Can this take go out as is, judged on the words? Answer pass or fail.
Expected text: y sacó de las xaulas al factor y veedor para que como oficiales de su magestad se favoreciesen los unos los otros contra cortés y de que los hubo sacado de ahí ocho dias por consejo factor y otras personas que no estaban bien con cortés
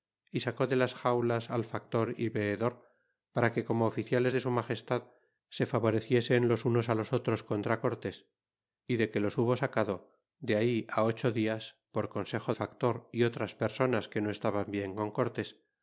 pass